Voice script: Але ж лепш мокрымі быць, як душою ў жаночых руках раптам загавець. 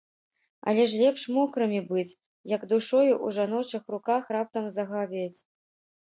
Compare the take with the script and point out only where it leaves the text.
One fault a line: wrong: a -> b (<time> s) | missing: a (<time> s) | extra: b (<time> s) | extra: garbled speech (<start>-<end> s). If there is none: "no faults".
no faults